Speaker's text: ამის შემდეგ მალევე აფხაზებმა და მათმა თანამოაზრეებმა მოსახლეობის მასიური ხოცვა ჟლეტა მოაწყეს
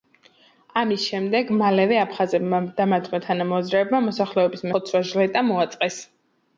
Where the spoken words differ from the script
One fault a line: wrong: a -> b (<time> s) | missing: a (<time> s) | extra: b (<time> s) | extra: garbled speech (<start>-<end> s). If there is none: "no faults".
missing: მასიური (4.7 s)